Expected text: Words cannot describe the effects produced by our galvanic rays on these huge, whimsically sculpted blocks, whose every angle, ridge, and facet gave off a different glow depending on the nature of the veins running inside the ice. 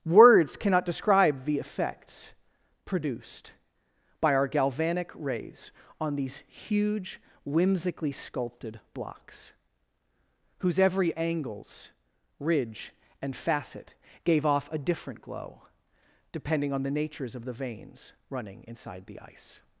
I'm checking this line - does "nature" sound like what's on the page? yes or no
no